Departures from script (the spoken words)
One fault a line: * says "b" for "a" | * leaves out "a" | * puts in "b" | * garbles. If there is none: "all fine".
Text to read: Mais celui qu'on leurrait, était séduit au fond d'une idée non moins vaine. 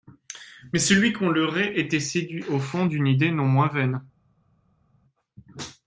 all fine